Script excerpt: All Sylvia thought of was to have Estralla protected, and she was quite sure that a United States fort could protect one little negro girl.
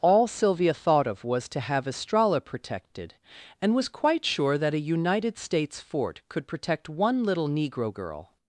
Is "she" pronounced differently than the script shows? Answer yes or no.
yes